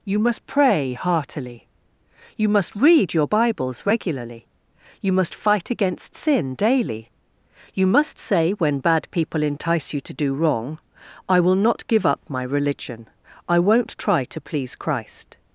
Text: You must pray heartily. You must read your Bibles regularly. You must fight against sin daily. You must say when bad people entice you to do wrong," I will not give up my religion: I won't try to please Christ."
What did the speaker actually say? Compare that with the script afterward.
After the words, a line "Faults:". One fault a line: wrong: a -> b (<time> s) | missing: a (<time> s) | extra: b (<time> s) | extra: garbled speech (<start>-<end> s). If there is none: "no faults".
You must pray heartily. You must read your Bibles regularly. You must fight against sin daily. You must say when bad people entice you to do wrong," I will not give up my religion: I won't try to please Christ."
Faults:
no faults